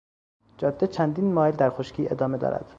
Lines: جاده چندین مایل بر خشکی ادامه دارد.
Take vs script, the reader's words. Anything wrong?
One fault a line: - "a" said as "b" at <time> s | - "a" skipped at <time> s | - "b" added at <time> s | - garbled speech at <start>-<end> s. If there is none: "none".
- "بر" said as "در" at 1.5 s